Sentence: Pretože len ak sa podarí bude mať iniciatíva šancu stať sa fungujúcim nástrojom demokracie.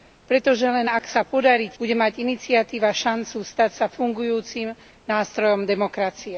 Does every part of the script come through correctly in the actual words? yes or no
yes